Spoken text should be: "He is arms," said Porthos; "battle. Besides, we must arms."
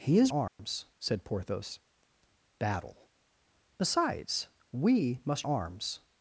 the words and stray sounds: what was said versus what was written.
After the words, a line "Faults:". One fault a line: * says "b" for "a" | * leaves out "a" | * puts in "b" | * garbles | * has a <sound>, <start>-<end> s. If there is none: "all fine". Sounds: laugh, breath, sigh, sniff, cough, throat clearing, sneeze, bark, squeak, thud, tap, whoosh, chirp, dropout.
"He is arms," said Porthos; "battle. Besides, we must arms."
Faults:
* has a dropout, 0.5-0.6 s